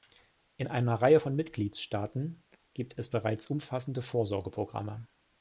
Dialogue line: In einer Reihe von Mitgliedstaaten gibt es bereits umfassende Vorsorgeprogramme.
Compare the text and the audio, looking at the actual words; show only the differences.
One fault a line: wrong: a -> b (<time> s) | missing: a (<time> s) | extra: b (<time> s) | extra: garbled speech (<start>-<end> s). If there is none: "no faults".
no faults